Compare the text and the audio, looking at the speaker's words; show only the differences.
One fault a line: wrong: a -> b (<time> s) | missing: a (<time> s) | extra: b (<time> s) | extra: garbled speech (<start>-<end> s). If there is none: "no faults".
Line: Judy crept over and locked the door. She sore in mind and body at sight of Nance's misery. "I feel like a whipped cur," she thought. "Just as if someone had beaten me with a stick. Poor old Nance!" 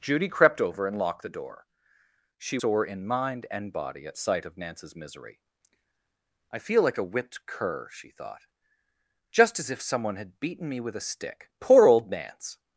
no faults